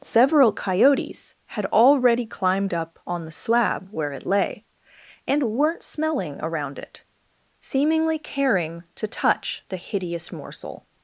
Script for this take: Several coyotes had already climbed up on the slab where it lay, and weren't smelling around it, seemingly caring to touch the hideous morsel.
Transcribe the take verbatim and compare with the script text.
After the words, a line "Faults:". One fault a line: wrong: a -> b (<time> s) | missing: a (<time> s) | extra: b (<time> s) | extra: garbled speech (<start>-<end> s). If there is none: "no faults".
Several coyotes had already climbed up on the slab where it lay, and weren't smelling around it, seemingly caring to touch the hideous morsel.
Faults:
no faults